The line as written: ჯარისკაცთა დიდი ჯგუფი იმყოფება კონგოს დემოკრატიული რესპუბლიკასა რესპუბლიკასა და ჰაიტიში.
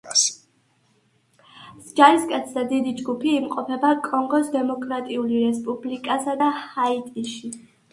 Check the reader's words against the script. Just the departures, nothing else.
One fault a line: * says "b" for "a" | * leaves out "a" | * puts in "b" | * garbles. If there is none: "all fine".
* leaves out "რესპუბლიკასა"